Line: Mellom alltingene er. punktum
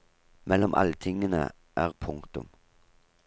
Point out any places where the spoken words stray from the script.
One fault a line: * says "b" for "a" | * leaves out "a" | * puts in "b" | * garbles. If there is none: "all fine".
all fine